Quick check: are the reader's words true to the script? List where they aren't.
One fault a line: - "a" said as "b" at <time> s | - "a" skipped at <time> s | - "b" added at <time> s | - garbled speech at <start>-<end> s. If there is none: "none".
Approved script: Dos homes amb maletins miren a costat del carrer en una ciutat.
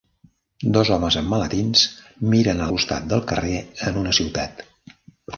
none